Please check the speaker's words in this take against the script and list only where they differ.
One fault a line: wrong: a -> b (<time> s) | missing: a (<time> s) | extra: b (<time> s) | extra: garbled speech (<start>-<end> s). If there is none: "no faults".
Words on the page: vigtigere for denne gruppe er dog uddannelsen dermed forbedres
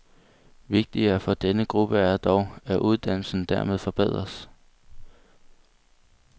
extra: at (2.6 s)